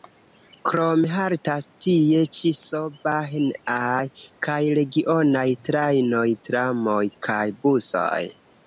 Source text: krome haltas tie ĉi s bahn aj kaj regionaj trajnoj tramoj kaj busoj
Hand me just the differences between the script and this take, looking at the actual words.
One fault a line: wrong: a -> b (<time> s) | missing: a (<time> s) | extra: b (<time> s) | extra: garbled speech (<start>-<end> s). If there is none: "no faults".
no faults